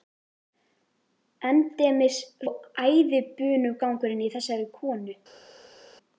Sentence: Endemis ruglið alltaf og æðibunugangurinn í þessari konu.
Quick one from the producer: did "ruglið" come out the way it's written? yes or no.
no